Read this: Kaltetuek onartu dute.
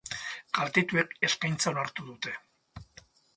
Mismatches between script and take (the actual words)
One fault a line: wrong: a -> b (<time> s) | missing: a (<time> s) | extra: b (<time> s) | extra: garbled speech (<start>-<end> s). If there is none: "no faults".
extra: eskaintza (1.3 s)